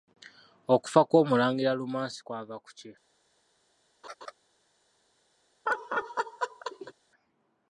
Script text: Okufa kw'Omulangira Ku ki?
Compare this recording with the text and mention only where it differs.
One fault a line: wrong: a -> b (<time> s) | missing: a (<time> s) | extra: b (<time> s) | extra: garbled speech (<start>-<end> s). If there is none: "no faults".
extra: Lumansi kwava (1.8 s)